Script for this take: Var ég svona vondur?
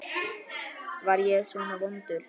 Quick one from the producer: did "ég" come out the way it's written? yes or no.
yes